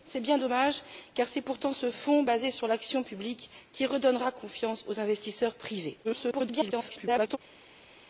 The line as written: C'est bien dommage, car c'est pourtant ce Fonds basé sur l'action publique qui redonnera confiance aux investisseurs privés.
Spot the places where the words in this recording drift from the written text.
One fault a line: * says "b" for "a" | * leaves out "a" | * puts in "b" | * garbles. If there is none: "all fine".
* garbles